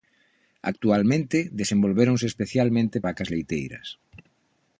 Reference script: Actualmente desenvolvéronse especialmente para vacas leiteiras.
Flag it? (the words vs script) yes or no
yes